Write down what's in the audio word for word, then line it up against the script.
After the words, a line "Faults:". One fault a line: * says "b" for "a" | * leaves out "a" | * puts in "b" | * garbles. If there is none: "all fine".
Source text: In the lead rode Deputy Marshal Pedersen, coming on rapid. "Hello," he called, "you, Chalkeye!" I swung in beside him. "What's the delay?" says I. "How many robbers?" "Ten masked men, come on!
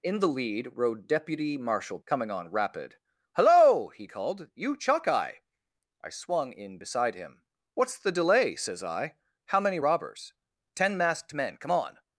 In the lead rode Deputy Marshal Coming on rapid. "Hello," he called, "you, Chalkeye!" I swung in beside him. "What's the delay?" says I. "How many robbers?" "Ten masked men, come on!
Faults:
* leaves out "Pedersen"